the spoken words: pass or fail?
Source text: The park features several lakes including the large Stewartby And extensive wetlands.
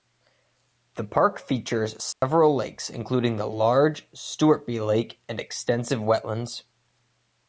fail